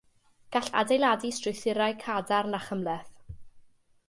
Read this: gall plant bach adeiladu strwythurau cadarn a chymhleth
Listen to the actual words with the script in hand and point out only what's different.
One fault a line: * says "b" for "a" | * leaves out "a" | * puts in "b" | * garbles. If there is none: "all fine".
* leaves out "plant bach"